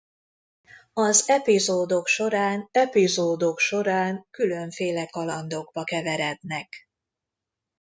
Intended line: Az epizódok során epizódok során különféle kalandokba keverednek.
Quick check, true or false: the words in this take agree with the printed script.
true